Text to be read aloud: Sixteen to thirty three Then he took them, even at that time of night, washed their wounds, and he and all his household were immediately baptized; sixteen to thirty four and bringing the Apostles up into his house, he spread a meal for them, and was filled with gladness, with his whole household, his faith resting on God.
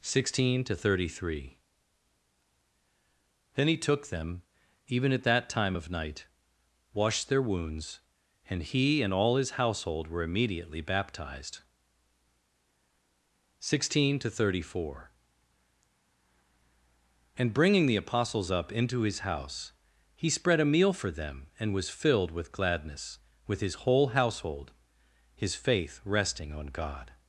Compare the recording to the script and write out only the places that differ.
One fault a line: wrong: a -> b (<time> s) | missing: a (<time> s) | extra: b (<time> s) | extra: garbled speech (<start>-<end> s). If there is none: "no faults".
no faults